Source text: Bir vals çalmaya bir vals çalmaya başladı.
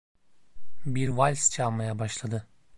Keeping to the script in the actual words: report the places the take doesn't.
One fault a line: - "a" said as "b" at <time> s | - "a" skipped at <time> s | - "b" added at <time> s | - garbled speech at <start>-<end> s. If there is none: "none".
- "bir vals çalmaya" skipped at 2.0 s